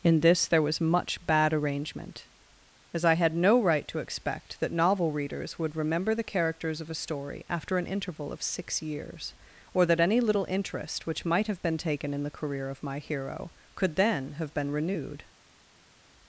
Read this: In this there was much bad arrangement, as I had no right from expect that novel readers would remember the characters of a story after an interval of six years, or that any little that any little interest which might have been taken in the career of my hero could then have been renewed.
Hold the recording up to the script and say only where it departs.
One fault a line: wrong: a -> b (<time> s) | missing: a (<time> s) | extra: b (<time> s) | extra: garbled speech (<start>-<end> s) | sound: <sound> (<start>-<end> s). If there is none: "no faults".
wrong: from -> to (3.9 s)
missing: that any little (10.4 s)